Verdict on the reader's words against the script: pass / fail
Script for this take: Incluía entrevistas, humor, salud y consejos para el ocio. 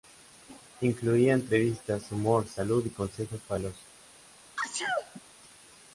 pass